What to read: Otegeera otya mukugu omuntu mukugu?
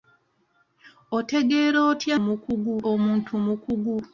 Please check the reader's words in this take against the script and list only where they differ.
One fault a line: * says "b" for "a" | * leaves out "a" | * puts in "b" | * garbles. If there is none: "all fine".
all fine